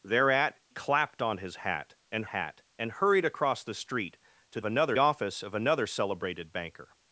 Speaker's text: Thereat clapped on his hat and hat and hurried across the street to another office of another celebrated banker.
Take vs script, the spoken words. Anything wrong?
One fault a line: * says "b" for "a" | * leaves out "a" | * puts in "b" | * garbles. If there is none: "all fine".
all fine